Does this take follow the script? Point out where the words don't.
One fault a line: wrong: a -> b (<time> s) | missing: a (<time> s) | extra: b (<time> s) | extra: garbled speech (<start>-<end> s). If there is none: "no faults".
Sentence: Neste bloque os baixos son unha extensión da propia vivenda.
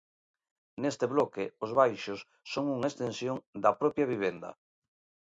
no faults